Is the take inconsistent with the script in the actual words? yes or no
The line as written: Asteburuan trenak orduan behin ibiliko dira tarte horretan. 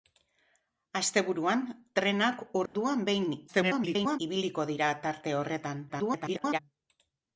yes